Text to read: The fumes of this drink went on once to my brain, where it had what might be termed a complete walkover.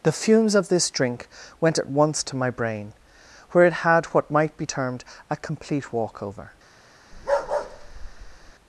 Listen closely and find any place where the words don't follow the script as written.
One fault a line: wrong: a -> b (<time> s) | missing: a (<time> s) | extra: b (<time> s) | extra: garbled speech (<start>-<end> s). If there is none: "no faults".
wrong: on -> at (1.8 s)